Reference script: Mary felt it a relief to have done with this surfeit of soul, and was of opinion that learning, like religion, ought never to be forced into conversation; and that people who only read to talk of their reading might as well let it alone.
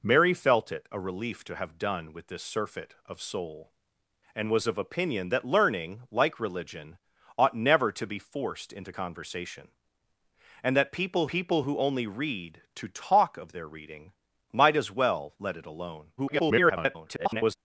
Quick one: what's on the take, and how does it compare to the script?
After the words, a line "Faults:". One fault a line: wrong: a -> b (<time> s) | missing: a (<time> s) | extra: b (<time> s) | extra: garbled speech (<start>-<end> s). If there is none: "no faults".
Mary felt it a relief to have done with this surfeit of soul, and was of opinion that learning, like religion, ought never to be forced into conversation; and that people people who only read to talk of their reading might as well let it alone. [garbled]
Faults:
extra: people (11.3 s)
extra: garbled speech (16.2-17.6 s)